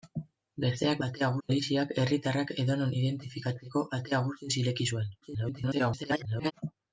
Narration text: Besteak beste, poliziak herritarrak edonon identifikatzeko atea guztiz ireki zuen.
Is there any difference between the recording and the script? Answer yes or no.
yes